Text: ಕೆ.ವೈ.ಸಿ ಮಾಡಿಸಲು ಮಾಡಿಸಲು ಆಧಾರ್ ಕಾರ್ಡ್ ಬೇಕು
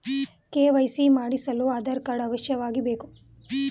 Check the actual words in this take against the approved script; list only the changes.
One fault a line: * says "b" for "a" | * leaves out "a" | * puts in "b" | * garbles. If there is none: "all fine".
* leaves out "ಮಾಡಿಸಲು"
* puts in "ಅವಶ್ಯವಾಗಿ"